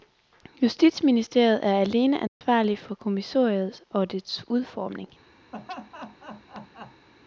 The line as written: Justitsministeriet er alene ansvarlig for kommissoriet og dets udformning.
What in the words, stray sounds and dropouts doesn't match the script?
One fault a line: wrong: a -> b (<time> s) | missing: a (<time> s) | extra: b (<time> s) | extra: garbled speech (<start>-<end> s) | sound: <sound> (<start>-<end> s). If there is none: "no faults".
sound: dropout (2.3-2.4 s)
sound: laugh (5.5-7.1 s)